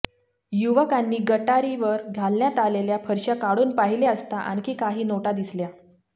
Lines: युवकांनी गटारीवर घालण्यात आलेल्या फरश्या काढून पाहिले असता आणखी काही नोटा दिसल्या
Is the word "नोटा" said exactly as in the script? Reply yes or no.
yes